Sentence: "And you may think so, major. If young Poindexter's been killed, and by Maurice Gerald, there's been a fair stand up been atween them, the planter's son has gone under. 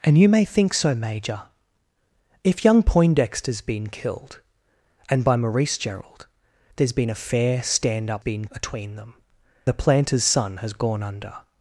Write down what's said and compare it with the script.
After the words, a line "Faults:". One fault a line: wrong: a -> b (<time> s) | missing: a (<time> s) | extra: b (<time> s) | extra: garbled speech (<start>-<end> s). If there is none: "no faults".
"And you may think so, major. If young Poindexter's been killed, and by Maurice Gerald, there's been a fair stand up been atween them, the planter's son has gone under.
Faults:
no faults